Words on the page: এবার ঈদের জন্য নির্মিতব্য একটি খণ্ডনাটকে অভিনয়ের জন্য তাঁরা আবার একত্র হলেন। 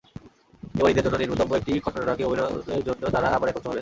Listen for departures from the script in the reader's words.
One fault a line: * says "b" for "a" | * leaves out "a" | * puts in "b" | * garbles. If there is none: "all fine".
all fine